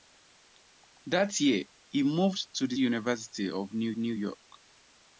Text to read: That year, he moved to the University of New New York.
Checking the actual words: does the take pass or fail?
pass